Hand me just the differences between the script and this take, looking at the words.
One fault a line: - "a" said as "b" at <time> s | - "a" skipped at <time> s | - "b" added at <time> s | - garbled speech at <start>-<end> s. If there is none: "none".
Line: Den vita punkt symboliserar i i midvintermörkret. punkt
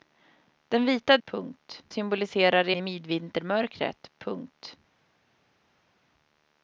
none